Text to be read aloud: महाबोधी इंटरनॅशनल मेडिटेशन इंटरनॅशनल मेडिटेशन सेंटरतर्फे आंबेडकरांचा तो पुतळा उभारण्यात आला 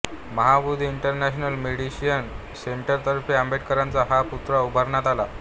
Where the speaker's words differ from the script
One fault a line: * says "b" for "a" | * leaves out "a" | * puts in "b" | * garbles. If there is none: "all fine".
* leaves out "इंटरनॅशनल मेडिटेशन"
* says "हा" for "तो"